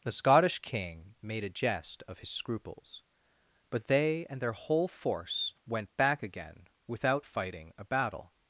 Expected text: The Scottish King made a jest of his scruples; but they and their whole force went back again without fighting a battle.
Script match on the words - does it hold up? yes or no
yes